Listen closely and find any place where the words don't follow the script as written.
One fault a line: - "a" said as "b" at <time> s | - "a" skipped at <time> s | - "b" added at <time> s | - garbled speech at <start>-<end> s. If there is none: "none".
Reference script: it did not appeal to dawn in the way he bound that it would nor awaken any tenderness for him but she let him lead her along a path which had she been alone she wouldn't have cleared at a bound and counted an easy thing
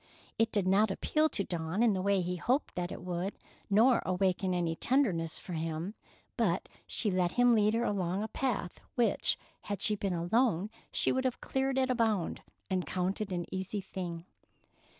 - "bound" said as "hoped" at 2.4 s
- "wouldn't" said as "would" at 11.1 s